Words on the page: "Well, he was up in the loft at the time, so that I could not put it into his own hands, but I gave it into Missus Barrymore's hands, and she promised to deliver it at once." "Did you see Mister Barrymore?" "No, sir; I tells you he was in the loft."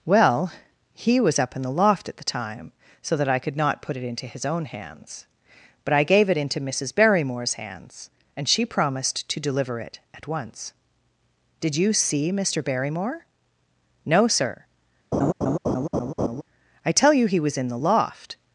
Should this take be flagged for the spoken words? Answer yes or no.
yes